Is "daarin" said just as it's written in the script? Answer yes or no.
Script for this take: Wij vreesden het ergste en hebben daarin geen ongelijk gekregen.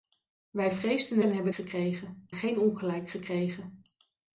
no